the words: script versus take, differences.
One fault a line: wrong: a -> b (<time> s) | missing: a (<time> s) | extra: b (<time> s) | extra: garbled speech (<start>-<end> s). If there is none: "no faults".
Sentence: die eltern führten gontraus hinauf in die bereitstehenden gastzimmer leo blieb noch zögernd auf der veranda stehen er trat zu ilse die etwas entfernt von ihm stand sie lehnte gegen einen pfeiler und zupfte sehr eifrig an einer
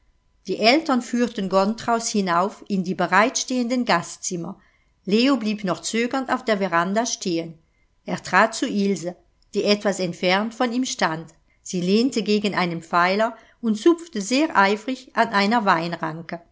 no faults